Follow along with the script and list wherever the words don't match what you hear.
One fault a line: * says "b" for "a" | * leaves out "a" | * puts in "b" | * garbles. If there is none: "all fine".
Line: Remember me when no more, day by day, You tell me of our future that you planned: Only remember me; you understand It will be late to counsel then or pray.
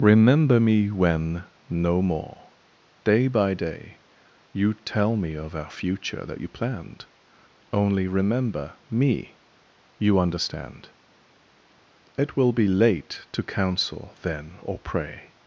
all fine